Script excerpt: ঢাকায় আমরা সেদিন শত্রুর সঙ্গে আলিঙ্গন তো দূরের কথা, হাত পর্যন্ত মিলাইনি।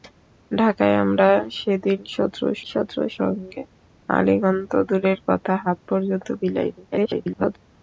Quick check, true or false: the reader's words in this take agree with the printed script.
false